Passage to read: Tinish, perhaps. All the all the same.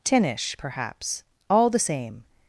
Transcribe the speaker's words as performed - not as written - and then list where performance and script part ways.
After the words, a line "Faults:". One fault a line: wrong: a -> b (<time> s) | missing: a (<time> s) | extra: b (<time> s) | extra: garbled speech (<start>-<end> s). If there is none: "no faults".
Tinish, perhaps. All the same.
Faults:
missing: all the (1.8 s)